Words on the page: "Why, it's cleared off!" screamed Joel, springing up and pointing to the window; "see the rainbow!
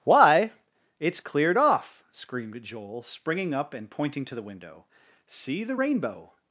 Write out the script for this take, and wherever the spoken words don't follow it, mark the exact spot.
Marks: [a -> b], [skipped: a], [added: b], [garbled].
"Why, it's cleared off!" screamed Joel, springing up and pointing to the window; "see the rainbow!